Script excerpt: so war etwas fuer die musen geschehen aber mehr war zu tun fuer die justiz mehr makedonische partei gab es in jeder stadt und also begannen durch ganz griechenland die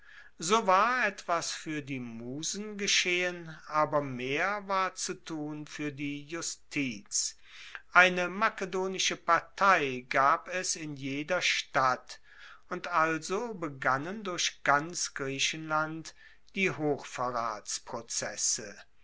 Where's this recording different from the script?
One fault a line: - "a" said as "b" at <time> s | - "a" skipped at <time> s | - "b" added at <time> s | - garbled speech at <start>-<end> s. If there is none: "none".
- "mehr" said as "eine" at 7.9 s